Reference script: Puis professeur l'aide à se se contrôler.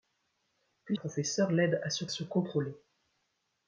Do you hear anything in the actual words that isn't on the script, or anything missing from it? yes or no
no